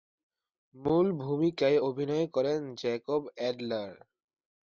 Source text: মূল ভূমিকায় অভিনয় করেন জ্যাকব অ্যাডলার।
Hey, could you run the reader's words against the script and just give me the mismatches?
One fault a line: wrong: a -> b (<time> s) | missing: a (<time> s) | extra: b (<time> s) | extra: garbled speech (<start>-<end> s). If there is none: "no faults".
no faults